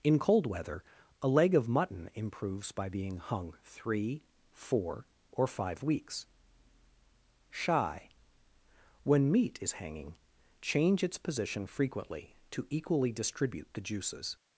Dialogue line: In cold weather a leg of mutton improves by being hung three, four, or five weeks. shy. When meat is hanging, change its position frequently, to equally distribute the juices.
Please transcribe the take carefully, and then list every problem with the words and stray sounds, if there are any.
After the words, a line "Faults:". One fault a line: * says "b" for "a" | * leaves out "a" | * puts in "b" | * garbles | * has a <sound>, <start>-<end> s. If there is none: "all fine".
In cold weather a leg of mutton improves by being hung three, four, or five weeks. shy. When meat is hanging, change its position frequently, to equally distribute the juices.
Faults:
all fine